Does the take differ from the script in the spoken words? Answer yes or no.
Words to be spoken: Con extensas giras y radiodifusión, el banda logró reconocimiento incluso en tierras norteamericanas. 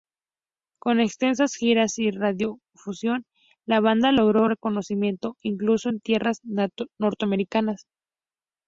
yes